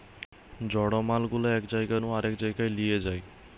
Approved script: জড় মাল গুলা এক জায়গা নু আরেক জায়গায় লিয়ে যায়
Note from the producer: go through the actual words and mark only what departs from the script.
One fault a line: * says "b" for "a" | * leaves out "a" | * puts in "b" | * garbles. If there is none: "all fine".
all fine